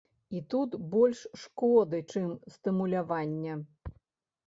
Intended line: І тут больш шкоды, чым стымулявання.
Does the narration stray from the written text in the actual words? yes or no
no